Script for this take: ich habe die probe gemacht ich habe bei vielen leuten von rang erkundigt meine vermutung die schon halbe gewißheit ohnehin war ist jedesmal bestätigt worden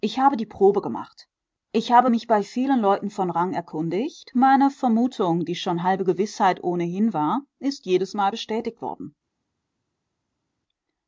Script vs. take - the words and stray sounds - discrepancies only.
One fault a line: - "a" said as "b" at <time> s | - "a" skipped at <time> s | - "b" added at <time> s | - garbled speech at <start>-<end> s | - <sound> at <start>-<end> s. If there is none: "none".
- "mich" added at 2.1 s